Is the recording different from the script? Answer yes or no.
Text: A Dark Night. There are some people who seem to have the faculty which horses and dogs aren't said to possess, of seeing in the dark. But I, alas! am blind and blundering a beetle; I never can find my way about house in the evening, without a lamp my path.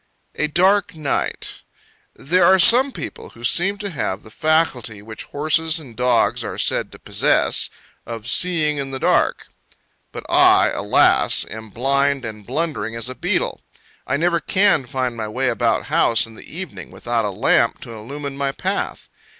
yes